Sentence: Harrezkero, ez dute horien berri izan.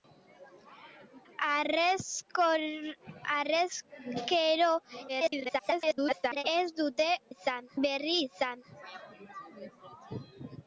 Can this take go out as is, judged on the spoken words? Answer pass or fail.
fail